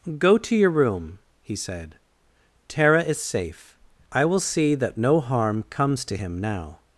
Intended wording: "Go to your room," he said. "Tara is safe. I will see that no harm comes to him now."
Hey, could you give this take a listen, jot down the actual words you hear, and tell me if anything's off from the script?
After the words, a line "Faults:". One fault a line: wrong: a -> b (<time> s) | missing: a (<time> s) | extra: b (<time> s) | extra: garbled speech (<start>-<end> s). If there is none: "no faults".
"Go to your room," he said. "Tara is safe. I will see that no harm comes to him now."
Faults:
no faults